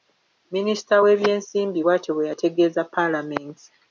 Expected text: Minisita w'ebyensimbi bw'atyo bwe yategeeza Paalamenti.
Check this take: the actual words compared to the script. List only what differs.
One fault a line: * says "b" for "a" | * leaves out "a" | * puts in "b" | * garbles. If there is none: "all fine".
all fine